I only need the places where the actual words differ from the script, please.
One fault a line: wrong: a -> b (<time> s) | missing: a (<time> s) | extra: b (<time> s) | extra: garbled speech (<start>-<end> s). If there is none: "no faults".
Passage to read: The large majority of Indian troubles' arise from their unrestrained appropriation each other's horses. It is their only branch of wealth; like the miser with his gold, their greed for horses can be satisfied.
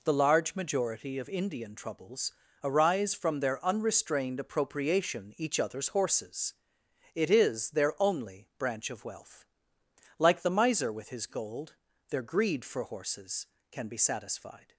no faults